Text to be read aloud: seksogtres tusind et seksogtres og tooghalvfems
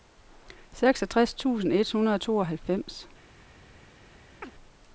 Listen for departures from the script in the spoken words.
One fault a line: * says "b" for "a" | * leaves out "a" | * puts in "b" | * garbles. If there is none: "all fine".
* says "hundrede" for "seksogtres"